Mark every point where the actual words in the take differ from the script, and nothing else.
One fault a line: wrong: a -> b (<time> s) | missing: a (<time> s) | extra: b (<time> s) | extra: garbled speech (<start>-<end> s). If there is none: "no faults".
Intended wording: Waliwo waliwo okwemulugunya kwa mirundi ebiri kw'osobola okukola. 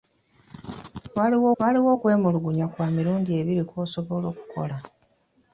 no faults